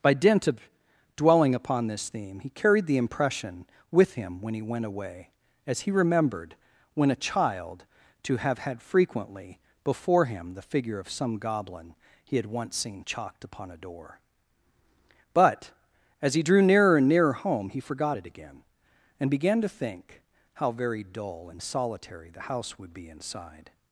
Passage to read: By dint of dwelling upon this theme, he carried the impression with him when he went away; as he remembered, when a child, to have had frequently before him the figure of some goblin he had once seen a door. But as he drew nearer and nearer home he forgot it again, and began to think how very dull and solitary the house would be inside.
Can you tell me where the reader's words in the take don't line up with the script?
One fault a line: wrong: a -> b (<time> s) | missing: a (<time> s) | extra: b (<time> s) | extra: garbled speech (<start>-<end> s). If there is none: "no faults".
extra: chalked upon (13.1 s)